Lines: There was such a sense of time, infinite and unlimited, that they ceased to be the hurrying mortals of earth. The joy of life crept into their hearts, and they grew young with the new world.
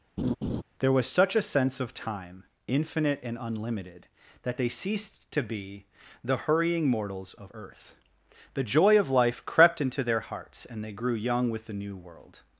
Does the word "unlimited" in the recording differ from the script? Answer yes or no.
no